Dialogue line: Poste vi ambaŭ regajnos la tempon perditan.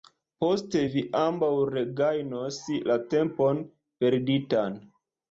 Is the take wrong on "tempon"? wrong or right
right